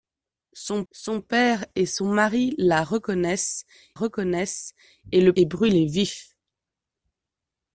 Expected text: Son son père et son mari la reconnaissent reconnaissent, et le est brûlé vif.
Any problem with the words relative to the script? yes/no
no